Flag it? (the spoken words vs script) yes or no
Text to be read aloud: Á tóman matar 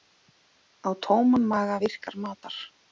yes